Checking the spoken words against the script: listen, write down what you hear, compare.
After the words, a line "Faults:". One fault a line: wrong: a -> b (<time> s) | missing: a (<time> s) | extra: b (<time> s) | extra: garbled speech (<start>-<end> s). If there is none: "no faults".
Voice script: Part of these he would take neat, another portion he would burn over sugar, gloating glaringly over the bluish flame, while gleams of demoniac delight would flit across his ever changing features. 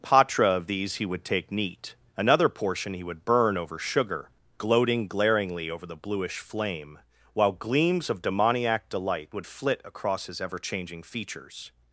Patra of these he would take neat, another portion he would burn over sugar, gloating glaringly over the bluish flame, while gleams of demoniac delight would flit across his ever changing features.
Faults:
wrong: Part -> Patra (0.0 s)